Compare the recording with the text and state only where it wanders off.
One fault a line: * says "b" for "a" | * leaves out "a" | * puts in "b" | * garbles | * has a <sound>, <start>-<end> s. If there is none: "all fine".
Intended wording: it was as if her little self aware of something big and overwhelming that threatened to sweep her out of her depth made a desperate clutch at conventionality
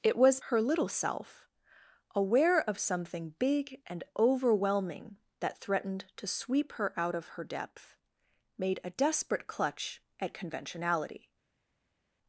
* leaves out "as if"